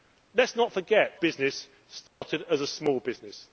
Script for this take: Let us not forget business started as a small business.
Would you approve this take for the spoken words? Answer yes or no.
yes